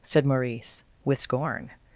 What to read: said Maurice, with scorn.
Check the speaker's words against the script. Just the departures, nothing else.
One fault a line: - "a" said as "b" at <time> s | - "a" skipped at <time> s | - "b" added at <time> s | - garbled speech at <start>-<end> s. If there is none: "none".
none